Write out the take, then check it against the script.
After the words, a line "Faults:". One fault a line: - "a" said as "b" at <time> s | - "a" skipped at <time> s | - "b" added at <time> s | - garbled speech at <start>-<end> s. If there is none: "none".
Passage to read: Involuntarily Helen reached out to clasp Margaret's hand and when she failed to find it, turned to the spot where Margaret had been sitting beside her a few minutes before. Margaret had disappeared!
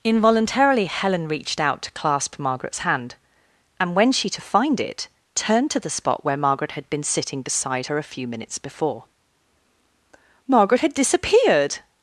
Involuntarily Helen reached out to clasp Margaret's hand and when she to find it, turned to the spot where Margaret had been sitting beside her a few minutes before. Margaret had disappeared!
Faults:
- "failed" skipped at 4.3 s